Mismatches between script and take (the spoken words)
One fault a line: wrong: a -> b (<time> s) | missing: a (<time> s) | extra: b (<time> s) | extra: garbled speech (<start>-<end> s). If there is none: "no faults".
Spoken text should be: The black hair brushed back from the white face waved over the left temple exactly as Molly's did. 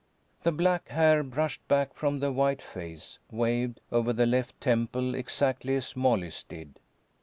no faults